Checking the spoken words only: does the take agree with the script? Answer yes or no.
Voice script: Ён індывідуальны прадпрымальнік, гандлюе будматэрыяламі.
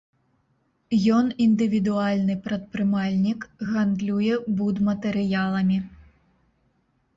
yes